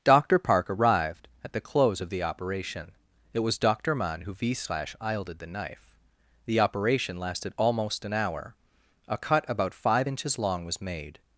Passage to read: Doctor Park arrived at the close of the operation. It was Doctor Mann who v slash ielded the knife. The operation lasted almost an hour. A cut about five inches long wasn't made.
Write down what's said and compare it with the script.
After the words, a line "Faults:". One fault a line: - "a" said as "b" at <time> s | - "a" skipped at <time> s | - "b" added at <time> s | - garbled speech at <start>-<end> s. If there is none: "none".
Doctor Park arrived at the close of the operation. It was Doctor Mann who v slash ielded the knife. The operation lasted almost an hour. A cut about five inches long was made.
Faults:
- "wasn't" said as "was" at 10.6 s